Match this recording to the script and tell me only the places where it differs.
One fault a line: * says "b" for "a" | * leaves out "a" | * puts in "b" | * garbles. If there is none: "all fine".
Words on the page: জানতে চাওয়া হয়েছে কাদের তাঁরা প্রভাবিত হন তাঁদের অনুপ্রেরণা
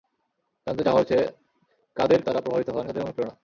all fine